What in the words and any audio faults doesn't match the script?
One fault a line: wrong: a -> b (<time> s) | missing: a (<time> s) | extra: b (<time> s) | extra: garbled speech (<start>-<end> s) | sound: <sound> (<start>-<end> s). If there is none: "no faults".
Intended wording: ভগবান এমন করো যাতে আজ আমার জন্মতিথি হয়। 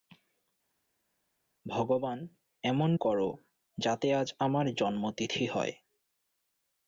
no faults